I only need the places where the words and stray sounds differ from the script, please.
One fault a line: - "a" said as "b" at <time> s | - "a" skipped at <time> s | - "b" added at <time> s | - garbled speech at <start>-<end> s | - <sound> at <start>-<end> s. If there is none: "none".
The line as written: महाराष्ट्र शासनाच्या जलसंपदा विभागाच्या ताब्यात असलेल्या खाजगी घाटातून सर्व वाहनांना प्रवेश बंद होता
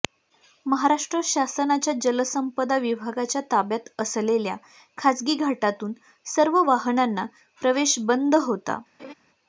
- laugh at 9.0-9.1 s